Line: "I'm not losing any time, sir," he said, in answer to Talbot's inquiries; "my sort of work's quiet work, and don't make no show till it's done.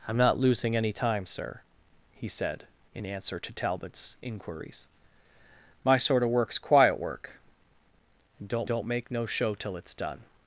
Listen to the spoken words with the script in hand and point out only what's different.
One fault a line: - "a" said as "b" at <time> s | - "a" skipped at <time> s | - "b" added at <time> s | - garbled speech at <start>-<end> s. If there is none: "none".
- "don't" added at 8.6 s